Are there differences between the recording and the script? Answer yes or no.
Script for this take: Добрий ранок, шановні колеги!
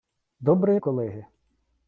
yes